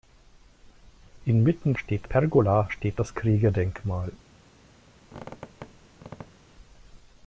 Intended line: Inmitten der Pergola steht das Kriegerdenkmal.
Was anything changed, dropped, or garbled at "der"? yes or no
yes